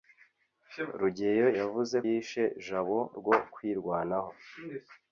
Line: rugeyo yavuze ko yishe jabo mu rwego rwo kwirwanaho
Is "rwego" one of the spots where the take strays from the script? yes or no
yes